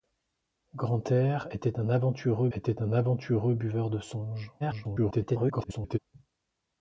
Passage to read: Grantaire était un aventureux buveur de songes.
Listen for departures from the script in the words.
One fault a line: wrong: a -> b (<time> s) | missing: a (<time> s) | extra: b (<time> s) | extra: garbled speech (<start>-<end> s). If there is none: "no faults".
extra: était un aventureux (2.5 s)
extra: garbled speech (4.6-6.0 s)